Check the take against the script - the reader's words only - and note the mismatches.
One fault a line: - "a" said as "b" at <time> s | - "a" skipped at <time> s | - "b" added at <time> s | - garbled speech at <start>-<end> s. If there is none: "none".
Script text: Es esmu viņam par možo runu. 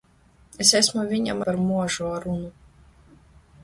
none